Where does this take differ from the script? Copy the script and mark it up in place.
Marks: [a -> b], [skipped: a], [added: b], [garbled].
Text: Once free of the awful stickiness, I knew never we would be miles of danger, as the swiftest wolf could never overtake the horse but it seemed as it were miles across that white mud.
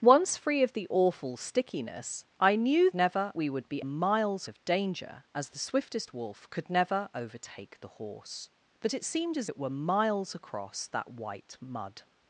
Once free of the awful stickiness, I knew never we would be miles of danger, as the swiftest wolf could never overtake the horse but it seemed as it were miles across that white mud.